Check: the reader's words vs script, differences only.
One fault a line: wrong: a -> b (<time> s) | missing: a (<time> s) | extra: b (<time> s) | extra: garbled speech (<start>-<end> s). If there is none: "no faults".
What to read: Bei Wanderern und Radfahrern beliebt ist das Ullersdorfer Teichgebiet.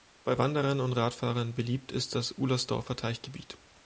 no faults